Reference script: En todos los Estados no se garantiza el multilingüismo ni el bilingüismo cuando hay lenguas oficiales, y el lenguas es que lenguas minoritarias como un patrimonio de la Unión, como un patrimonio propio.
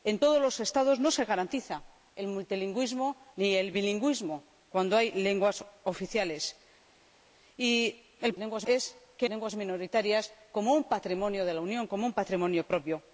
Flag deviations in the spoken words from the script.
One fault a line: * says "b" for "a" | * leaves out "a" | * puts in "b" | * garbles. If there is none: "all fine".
all fine